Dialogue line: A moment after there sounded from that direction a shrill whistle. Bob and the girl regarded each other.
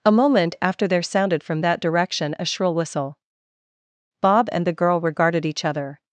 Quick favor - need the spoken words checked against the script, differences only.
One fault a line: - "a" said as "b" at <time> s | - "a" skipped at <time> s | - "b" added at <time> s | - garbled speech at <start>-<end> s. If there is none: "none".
none